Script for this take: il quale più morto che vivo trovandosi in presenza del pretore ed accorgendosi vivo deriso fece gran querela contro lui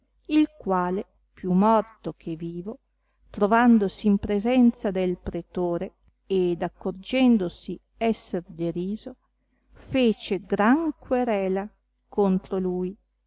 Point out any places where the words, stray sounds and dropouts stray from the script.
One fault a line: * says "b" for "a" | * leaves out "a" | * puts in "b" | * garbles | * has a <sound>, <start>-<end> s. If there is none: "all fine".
* says "esser" for "vivo"